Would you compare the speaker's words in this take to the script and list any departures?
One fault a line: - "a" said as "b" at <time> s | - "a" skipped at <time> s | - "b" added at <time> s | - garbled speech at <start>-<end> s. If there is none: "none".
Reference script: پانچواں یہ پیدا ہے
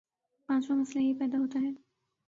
- "مسئلہ" added at 0.8 s
- "ہوتا" added at 1.4 s